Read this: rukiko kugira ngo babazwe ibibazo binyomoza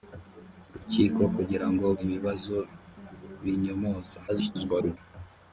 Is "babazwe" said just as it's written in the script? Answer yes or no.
no